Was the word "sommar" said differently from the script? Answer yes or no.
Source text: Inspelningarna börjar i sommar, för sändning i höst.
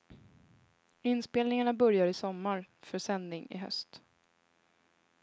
no